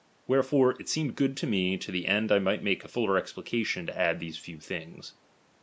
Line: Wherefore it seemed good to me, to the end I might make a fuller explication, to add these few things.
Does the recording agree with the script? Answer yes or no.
yes